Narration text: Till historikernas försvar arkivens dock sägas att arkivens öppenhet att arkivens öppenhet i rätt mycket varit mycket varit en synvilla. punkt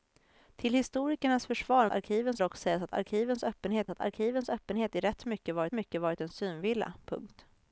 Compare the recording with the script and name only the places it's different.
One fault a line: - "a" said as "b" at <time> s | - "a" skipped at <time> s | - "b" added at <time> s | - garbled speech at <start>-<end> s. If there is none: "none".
none